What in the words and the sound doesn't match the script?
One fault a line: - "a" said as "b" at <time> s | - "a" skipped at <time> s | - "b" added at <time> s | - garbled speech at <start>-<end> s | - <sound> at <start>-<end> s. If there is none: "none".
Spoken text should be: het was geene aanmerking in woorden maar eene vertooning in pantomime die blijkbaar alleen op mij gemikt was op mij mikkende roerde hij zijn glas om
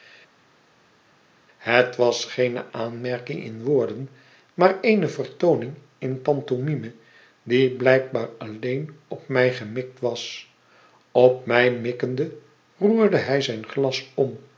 none